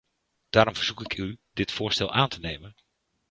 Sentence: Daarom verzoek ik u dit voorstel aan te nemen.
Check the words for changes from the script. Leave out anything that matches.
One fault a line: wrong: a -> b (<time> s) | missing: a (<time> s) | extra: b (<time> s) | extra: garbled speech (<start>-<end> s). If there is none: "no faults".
no faults